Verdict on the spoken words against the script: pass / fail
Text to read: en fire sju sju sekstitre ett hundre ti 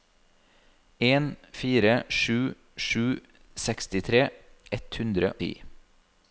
pass